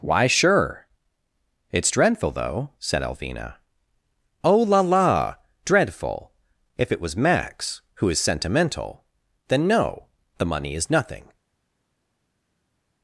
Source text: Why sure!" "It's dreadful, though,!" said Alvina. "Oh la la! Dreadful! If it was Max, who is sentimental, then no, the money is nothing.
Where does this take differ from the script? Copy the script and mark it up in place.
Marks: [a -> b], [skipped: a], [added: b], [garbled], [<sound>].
Why sure!" "It's dreadful, though,!" said Alvina. "Oh la la! Dreadful! If it was Max, who is sentimental, then no, the money is nothing.